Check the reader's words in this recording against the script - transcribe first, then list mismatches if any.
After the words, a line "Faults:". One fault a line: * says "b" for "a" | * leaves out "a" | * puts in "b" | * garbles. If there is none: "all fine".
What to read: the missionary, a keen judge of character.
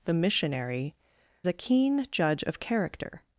the missionary, a keen judge of character.
Faults:
all fine